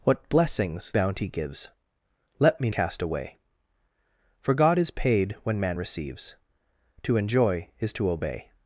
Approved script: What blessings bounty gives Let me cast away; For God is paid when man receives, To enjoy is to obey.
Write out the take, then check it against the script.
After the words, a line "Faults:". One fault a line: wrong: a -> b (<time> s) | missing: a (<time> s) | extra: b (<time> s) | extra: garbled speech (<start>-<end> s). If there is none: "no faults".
What blessings bounty gives Let me cast away; For God is paid when man receives, To enjoy is to obey.
Faults:
no faults